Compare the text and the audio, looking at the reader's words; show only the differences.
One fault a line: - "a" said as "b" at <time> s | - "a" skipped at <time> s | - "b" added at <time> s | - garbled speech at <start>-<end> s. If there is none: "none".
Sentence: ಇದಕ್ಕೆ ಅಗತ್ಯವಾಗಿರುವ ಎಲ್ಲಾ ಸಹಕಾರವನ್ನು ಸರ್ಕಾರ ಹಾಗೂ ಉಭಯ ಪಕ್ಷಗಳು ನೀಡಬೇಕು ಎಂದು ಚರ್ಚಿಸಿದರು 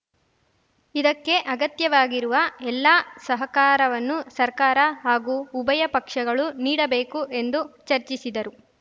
none